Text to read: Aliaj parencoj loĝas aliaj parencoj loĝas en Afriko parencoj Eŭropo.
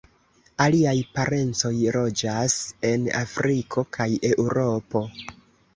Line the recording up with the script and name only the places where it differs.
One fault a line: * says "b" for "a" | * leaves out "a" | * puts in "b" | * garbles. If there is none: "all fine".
* leaves out "aliaj parencoj loĝas"
* says "kaj" for "parencoj"